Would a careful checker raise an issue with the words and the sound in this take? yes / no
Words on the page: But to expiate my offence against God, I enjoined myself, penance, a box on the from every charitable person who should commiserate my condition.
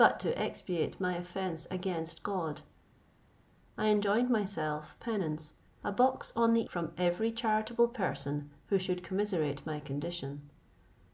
no